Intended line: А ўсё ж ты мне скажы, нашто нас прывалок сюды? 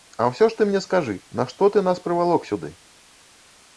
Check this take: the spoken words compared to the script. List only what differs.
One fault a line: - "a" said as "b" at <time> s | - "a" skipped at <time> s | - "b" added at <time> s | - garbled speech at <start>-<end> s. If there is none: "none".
- "ты" added at 1.8 s